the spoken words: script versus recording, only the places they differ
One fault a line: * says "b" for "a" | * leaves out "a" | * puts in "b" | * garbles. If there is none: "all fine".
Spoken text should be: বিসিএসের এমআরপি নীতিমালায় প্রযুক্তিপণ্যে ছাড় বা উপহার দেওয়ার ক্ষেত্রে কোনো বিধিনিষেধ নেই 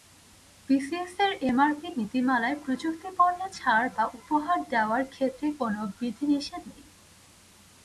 all fine